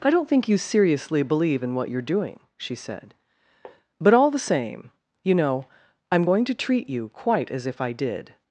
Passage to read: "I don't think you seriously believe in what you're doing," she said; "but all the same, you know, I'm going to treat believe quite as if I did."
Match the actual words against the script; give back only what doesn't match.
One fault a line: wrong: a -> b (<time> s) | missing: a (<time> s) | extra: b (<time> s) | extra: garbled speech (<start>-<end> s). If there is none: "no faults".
wrong: believe -> you (6.9 s)